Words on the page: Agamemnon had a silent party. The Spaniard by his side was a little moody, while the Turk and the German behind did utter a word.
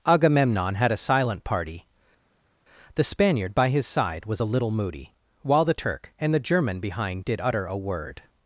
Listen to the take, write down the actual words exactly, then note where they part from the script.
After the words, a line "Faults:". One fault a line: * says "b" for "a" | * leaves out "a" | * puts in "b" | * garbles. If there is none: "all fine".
Agamemnon had a silent party. The Spaniard by his side was a little moody, while the Turk and the German behind did utter a word.
Faults:
all fine